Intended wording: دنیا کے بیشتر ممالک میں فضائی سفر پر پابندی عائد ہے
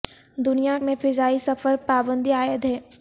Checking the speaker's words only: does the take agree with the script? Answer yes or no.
no